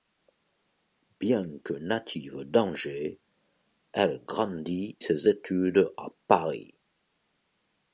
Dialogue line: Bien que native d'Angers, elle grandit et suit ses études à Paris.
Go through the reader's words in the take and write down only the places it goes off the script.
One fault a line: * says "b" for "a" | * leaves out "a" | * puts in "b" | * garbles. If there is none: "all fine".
* leaves out "et suit"